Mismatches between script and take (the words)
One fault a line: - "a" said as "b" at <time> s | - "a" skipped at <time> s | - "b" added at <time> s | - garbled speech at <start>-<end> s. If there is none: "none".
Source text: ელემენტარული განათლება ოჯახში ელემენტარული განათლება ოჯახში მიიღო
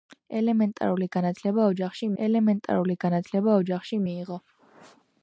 none